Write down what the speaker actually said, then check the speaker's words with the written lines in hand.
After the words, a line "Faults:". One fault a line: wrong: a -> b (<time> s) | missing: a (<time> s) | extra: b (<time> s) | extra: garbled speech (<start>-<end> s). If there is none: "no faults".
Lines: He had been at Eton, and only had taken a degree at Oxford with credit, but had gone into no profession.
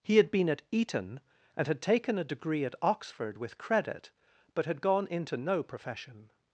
He had been at Eton, and had taken a degree at Oxford with credit, but had gone into no profession.
Faults:
missing: only (1.7 s)